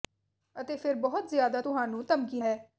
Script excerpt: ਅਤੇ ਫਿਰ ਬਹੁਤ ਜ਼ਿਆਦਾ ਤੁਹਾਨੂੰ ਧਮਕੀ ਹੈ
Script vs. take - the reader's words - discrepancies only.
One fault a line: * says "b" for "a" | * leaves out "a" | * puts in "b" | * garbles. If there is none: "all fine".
all fine